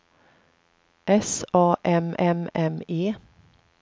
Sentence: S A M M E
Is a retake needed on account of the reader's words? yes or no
yes